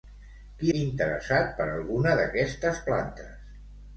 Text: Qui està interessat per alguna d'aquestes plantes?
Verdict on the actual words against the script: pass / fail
fail